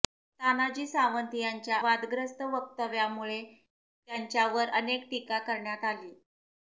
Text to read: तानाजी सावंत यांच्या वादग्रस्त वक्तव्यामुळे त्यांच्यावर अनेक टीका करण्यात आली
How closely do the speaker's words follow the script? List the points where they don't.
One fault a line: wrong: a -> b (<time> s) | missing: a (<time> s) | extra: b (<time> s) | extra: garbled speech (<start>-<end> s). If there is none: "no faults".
no faults